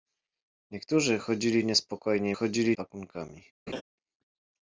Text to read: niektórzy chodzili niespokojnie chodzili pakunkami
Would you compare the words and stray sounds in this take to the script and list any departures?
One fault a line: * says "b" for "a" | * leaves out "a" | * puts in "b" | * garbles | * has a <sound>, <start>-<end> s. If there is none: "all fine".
* has a laugh, 3.7-3.8 s